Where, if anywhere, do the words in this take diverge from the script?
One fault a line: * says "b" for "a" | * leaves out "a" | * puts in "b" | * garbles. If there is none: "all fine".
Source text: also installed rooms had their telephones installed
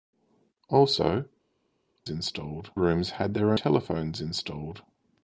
all fine